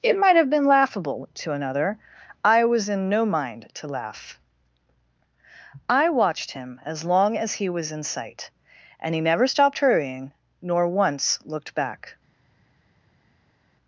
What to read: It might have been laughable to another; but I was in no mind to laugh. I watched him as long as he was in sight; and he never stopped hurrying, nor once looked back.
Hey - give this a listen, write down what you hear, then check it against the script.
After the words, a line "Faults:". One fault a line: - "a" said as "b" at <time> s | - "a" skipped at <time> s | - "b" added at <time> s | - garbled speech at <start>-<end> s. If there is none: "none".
It might have been laughable to another; I was in no mind to laugh. I watched him as long as he was in sight; and he never stopped hurrying, nor once looked back.
Faults:
- "but" skipped at 2.0 s